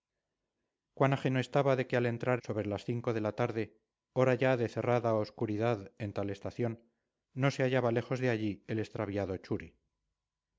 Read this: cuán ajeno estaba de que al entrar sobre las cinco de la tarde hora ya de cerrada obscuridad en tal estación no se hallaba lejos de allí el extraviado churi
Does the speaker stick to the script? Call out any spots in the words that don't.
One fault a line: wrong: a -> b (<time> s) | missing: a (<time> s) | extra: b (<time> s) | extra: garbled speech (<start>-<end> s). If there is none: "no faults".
no faults